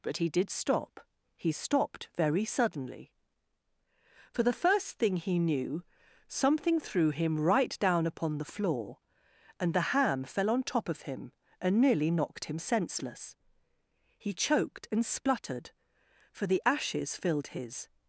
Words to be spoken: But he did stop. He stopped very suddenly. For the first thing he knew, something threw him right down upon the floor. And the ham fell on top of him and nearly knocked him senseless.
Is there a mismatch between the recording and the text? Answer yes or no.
yes